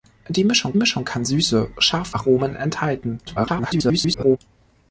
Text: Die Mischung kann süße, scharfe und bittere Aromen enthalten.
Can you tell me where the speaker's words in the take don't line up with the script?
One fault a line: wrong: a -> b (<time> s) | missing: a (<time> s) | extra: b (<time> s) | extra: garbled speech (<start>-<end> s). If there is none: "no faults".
extra: Mischung (0.7 s)
missing: und bittere (2.2 s)
extra: garbled speech (3.3-4.4 s)